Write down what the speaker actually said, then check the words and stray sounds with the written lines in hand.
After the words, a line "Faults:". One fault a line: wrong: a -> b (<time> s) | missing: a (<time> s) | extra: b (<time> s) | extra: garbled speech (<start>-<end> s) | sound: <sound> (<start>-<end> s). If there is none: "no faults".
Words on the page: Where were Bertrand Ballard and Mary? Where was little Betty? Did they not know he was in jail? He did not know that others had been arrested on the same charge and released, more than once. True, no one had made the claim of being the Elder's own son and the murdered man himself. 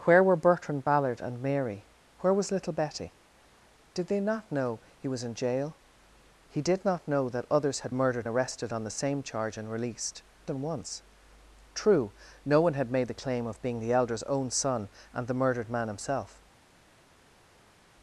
Where were Bertrand Ballard and Mary? Where was little Betty? Did they not know he was in jail? He did not know that others had murdered arrested on the same charge and released, than once. True, no one had made the claim of being the Elder's own son and the murdered man himself.
Faults:
wrong: been -> murdered (7.9 s)
missing: more (10.2 s)